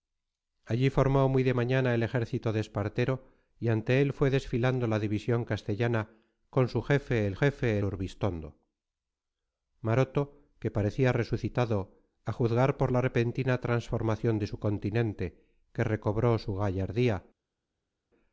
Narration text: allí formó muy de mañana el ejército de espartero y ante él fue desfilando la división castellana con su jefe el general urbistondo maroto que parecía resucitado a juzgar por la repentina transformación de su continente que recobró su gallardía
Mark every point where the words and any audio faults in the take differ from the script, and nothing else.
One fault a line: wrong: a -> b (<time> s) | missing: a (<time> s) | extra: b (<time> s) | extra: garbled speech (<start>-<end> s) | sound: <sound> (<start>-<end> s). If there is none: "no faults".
wrong: general -> jefe (7.3 s)